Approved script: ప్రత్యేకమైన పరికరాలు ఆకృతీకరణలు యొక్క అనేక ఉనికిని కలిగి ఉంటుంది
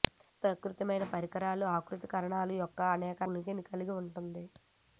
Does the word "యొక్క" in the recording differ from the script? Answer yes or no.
no